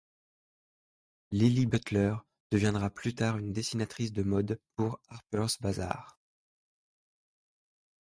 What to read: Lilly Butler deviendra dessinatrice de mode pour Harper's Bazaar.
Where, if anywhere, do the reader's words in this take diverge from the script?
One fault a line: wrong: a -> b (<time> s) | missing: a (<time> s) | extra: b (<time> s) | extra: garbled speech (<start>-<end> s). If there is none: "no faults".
extra: plus tard une (2.9 s)